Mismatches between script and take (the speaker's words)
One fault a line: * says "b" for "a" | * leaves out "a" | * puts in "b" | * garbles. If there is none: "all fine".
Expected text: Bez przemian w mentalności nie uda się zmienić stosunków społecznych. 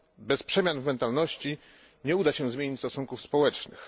all fine